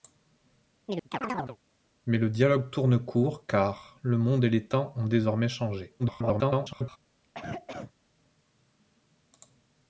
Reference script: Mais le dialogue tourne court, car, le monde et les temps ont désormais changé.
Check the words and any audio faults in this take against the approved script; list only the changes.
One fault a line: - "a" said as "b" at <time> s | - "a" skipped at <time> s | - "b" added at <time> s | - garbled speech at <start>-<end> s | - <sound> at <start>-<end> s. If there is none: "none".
- chirp at 0.8-1.6 s
- garbled speech at 6.0-7.0 s
- cough at 7.2-7.9 s